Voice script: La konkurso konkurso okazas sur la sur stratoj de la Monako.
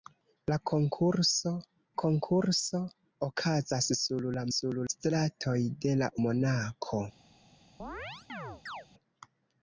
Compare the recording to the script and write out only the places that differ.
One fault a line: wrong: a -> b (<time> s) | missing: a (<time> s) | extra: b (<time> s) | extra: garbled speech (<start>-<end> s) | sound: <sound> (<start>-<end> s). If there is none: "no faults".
sound: chirp (7.8-8.9 s)